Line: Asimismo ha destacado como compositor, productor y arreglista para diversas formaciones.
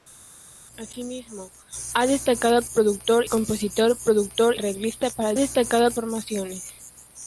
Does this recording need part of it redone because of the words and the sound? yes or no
yes